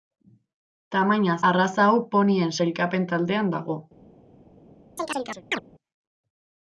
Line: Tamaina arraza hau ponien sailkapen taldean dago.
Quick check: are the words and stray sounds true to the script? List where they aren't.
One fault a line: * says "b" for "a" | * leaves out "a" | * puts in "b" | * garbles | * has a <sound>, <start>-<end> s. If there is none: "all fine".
* has a chirp, 5.0-5.6 s